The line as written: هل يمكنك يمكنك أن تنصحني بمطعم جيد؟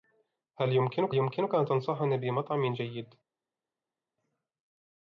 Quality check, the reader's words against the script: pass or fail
pass